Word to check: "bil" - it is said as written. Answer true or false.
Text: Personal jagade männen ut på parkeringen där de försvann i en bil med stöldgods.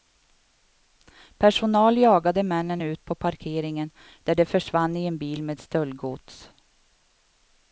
true